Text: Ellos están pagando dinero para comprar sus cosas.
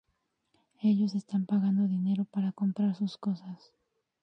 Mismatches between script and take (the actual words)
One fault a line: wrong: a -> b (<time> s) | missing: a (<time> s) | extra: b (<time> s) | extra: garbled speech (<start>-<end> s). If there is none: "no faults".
no faults